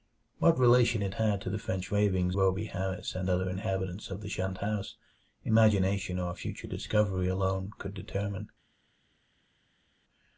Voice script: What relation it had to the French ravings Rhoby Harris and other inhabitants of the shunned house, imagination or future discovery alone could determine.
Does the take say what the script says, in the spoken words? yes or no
yes